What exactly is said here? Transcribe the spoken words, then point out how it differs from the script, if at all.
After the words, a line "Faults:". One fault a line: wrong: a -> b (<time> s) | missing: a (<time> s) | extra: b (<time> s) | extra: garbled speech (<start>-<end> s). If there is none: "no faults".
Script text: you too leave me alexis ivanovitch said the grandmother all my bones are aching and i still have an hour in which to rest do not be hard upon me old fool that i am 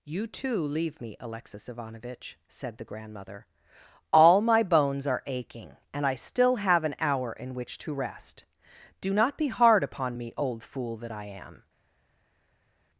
you too leave me alexis ivanovitch said the grandmother all my bones are aching and i still have an hour in which to rest do not be hard upon me old fool that i am
Faults:
no faults